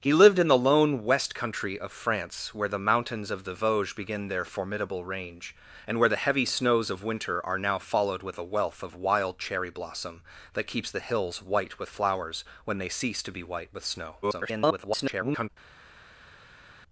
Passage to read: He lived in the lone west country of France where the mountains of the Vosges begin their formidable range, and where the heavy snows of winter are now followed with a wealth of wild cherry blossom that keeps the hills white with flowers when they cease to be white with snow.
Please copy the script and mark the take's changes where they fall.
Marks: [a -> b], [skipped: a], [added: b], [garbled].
He lived in the lone west country of France where the mountains of the Vosges begin their formidable range, and where the heavy snows of winter are now followed with a wealth of wild cherry blossom that keeps the hills white with flowers when they cease to be white with snow. [garbled]